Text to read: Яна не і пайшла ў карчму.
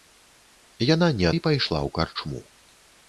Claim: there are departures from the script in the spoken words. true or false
false